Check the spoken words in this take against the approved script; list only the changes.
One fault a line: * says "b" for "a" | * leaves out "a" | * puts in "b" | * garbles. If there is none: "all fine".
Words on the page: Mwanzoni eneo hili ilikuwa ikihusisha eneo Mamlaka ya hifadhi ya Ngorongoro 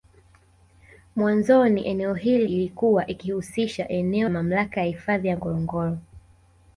all fine